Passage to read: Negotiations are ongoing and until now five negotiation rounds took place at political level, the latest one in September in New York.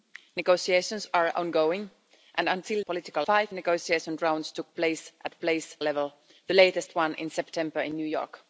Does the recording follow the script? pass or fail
fail